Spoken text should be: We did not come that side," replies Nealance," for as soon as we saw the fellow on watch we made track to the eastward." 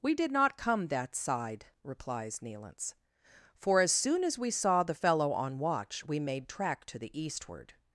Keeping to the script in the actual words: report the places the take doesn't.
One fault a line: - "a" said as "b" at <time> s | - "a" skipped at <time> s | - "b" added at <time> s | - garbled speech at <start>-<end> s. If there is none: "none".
none